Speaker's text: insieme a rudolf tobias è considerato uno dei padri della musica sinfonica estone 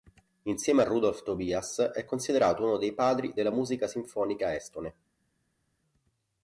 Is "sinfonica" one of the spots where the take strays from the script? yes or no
no